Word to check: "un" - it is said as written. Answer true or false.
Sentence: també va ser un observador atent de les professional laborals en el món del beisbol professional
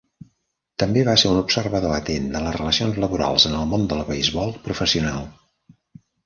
true